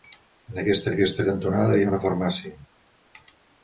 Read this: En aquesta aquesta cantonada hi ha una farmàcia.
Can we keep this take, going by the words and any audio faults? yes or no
yes